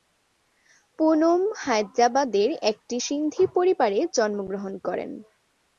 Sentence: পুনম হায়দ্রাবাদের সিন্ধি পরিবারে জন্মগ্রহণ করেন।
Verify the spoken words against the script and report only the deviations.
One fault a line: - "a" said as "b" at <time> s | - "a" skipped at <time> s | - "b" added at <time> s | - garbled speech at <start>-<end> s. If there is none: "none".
- "একটি" added at 2.7 s